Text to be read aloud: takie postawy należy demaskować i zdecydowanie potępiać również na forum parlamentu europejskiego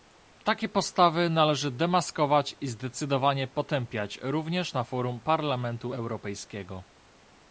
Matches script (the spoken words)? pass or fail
pass